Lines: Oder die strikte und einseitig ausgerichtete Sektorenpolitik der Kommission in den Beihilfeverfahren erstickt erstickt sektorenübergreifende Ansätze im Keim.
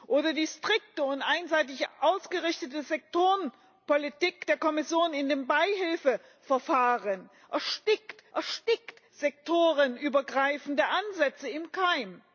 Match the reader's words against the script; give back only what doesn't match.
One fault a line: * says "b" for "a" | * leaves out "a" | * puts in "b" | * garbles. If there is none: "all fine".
all fine